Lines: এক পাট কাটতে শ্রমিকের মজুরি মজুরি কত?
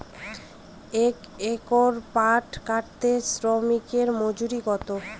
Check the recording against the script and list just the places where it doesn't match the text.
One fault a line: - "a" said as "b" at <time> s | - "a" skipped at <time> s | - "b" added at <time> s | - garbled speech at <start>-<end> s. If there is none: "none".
- "একর" added at 1.5 s
- "মজুরি" skipped at 4.6 s